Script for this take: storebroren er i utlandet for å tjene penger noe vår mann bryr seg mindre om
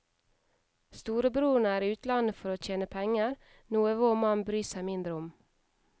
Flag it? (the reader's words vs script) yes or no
no